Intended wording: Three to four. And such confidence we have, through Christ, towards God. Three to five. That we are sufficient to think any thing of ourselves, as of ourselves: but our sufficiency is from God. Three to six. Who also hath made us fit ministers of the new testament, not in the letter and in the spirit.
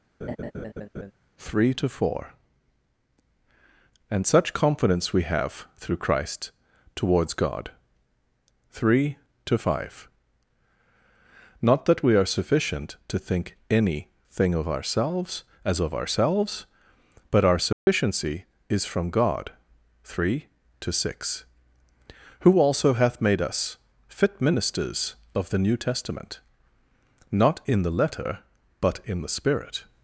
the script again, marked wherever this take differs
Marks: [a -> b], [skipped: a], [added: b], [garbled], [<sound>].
[laugh] Three to four. And such confidence we have, through Christ, towards God. Three to five. [added: Not] That we are sufficient to think any thing of ourselves, as of ourselves: but our sufficiency [dropout] is from God. Three to six. Who also hath made us fit ministers of the new testament, not in the letter [and -> but] in the spirit.